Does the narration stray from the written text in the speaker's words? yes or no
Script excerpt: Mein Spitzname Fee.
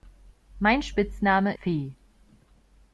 no